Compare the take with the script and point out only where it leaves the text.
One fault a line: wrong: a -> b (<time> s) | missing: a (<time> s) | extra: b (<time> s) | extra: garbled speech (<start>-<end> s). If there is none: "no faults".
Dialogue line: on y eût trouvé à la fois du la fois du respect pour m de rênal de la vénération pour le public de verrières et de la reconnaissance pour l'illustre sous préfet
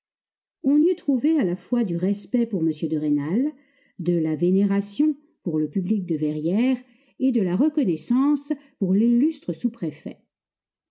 missing: la fois du (2.0 s)